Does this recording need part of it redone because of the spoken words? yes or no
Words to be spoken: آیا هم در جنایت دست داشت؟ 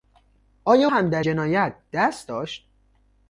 no